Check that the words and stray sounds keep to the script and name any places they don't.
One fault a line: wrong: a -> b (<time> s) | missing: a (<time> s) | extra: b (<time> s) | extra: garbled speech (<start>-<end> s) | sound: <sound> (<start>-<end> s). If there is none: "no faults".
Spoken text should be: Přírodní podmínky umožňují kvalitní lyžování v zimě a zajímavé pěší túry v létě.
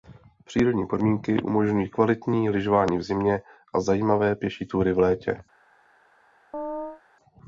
sound: chirp (6.5-7.0 s)